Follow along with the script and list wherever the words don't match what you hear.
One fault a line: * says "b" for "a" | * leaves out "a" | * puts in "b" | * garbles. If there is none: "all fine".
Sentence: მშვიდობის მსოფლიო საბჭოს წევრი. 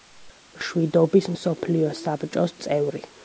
all fine